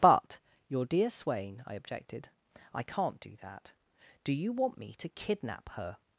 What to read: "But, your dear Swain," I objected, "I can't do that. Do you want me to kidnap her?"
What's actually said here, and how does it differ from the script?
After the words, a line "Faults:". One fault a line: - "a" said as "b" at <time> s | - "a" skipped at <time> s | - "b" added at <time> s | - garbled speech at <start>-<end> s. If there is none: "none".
"But, your dear Swain," I objected, "I can't do that. Do you want me to kidnap her?"
Faults:
none